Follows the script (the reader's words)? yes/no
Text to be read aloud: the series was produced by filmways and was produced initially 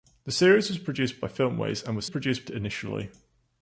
yes